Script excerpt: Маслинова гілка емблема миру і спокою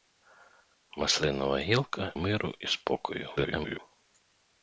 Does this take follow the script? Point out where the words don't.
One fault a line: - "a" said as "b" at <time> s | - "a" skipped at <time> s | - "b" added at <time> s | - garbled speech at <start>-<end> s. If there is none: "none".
- "емблема" skipped at 2.1 s
- garbled speech at 3.4-3.8 s